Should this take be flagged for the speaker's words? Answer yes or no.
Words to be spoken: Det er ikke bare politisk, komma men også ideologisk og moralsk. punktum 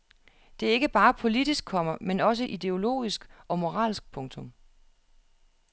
no